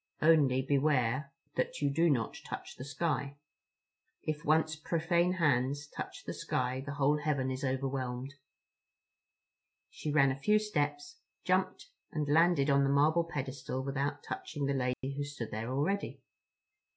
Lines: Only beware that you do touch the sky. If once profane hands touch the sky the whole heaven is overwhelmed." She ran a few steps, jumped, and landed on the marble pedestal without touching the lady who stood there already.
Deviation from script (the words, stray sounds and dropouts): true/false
true